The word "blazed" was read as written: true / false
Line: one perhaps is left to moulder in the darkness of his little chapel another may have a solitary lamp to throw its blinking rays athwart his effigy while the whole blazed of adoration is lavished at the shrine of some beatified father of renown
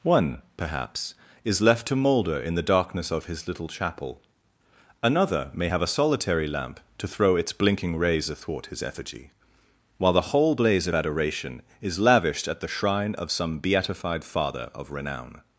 false